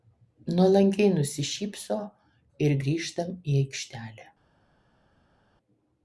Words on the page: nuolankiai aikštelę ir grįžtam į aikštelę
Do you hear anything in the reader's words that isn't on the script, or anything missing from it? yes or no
yes